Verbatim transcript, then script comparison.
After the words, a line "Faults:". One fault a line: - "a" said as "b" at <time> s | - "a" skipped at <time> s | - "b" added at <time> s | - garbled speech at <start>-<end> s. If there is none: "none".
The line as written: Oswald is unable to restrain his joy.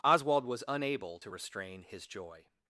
Oswald was unable to restrain his joy.
Faults:
- "is" said as "was" at 0.5 s